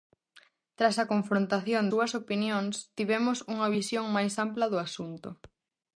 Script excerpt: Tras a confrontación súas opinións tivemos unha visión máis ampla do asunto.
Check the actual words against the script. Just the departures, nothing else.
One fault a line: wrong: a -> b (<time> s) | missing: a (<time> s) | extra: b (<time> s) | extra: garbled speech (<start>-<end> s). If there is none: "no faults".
no faults